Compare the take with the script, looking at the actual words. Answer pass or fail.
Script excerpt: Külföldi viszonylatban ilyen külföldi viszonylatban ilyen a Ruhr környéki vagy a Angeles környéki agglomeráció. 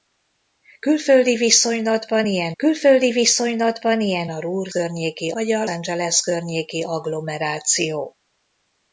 pass